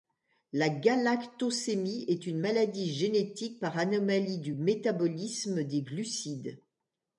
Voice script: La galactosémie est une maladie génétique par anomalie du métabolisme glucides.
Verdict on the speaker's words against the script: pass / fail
fail